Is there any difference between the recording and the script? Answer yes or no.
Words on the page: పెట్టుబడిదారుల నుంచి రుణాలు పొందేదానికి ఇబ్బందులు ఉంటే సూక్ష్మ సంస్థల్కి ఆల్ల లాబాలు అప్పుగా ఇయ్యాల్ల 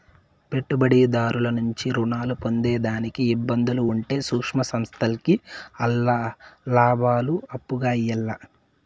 no